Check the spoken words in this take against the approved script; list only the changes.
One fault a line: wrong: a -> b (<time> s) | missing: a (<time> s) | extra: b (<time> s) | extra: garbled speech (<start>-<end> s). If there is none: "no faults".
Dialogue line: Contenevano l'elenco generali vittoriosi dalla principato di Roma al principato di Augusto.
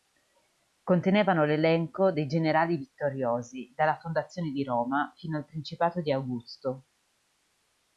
extra: dei (2.1 s)
wrong: principato -> fondazione (4.0 s)
extra: fino (5.2 s)